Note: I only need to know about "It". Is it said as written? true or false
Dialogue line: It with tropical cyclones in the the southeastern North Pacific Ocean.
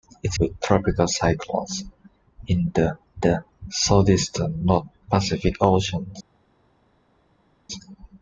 true